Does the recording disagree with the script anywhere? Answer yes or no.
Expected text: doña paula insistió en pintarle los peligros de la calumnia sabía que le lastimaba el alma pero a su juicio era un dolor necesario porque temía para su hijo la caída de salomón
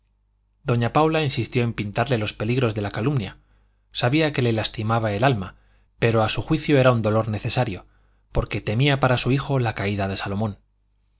no